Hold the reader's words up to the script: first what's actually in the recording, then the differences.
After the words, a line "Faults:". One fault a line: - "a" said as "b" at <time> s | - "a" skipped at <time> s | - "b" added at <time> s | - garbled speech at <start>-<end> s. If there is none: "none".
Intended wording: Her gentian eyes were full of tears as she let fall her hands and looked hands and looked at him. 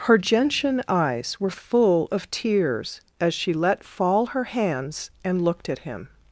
Her gentian eyes were full of tears as she let fall her hands and looked at him.
Faults:
- "hands and looked" skipped at 5.7 s